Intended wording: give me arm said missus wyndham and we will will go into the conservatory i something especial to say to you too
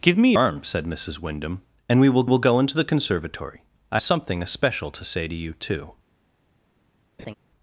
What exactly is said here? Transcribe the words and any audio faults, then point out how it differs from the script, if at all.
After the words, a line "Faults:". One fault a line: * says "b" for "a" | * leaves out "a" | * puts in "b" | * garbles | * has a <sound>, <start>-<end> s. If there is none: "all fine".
give me arm said missus wyndham and we will will go into the conservatory i something especial to say to you too
Faults:
* has a laugh, 7.2-7.3 s